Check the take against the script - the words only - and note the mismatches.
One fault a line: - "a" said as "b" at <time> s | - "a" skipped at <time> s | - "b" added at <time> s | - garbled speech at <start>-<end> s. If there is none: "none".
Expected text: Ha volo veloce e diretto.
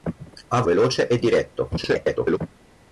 - "volo" skipped at 0.6 s
- garbled speech at 1.8-2.4 s